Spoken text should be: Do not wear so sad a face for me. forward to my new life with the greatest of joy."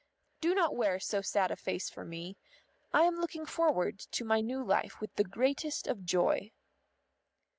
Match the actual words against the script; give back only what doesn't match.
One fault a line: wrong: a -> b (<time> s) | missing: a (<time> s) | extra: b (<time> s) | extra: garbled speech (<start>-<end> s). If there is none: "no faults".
extra: I am looking (2.9 s)